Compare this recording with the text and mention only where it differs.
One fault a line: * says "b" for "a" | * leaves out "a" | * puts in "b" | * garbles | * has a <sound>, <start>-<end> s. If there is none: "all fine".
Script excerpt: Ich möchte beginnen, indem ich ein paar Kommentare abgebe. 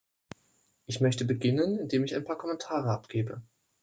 all fine